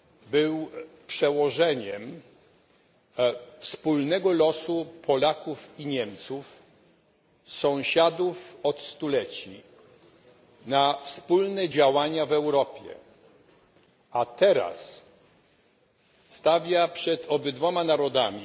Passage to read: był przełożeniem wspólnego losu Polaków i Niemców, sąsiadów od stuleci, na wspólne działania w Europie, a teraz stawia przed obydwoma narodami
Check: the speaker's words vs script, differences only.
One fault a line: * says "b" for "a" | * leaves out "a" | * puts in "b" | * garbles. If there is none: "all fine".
all fine